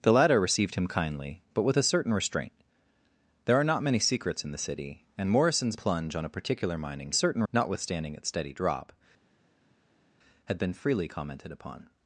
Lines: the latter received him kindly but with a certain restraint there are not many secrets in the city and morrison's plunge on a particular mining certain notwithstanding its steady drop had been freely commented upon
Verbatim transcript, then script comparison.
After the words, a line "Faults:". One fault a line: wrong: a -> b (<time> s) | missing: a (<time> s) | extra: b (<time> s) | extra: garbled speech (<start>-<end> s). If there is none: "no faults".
the latter received him kindly but with a certain restraint there are not many secrets in the city and morrison's plunge on a particular mining certain notwithstanding its steady drop had been freely commented upon
Faults:
no faults